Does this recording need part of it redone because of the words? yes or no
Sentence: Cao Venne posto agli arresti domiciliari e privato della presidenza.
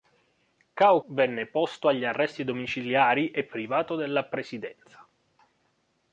no